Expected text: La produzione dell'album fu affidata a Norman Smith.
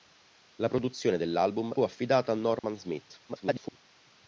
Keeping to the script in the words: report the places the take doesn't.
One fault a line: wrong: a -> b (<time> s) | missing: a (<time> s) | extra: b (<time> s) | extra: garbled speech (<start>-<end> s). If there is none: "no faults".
missing: fu (1.8 s)
extra: garbled speech (3.3-3.8 s)